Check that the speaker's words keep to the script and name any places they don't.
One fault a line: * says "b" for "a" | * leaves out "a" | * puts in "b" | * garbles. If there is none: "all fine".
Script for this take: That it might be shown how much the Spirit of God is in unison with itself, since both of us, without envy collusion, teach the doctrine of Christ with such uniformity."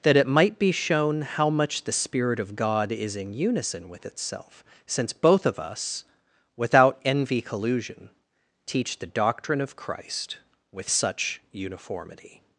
all fine